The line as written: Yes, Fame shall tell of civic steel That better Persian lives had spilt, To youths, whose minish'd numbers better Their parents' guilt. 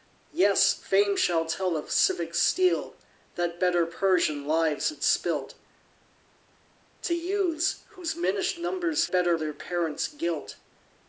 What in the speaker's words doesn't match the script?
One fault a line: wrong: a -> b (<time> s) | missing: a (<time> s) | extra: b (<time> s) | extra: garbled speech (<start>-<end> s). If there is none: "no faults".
no faults